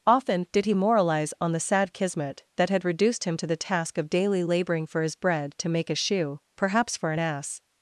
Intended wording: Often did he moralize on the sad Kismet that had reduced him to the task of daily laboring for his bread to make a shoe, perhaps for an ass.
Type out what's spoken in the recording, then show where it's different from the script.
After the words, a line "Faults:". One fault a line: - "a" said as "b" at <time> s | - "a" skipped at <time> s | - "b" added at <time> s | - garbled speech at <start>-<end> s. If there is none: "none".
Often did he moralize on the sad Kismet that had reduced him to the task of daily laboring for his bread to make a shoe, perhaps for an ass.
Faults:
none